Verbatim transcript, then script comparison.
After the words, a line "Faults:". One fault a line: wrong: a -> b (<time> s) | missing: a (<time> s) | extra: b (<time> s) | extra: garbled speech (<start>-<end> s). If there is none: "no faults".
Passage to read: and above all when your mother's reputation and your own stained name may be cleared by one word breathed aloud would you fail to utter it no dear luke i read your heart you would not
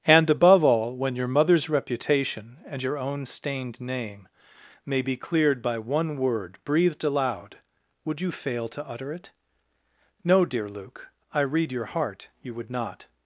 and above all when your mother's reputation and your own stained name may be cleared by one word breathed aloud would you fail to utter it no dear luke i read your heart you would not
Faults:
no faults